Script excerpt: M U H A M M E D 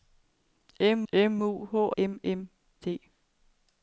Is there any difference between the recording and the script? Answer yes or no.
yes